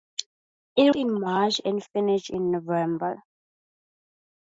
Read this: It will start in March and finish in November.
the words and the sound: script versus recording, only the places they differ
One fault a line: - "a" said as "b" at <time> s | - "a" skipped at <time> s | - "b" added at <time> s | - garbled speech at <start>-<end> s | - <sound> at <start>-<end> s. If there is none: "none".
- "will start" skipped at 0.9 s